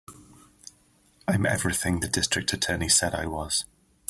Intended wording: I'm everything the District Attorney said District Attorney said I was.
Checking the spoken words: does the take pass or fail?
fail